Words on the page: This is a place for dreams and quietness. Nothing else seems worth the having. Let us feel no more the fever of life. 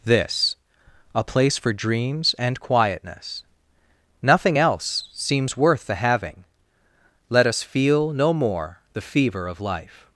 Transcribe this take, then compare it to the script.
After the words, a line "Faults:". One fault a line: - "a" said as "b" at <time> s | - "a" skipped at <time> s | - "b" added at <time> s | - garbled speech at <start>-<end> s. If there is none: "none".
This a place for dreams and quietness. Nothing else seems worth the having. Let us feel no more the fever of life.
Faults:
- "is" skipped at 0.6 s